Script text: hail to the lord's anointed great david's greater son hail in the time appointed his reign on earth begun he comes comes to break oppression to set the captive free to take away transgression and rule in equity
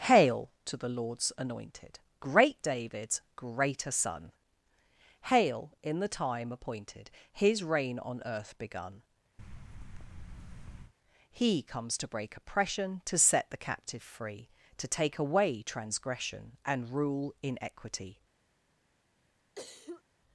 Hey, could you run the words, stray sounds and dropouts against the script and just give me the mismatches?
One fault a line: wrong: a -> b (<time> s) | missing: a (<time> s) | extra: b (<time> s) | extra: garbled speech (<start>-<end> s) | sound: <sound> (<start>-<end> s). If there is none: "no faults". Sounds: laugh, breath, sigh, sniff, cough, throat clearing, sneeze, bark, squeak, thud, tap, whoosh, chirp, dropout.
sound: thud (9.4-10.9 s)
missing: comes (12.0 s)
sound: cough (19.5-20.0 s)